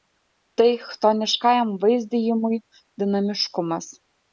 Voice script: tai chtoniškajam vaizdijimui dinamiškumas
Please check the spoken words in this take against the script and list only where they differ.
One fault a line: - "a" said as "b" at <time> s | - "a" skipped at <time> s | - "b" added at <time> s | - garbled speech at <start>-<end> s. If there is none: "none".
none